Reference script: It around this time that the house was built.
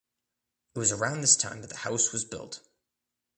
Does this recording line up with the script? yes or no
no